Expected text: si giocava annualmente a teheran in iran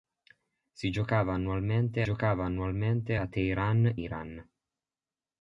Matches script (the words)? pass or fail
fail